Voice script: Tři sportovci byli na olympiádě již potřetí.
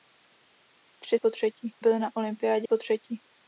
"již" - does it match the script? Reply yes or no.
no